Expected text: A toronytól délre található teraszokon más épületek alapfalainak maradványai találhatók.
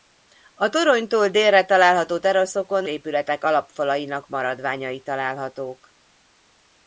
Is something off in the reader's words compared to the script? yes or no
yes